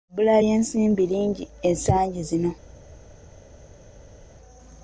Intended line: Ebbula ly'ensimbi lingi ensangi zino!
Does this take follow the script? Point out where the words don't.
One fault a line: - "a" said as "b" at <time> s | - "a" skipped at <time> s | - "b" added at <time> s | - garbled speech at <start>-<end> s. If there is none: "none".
none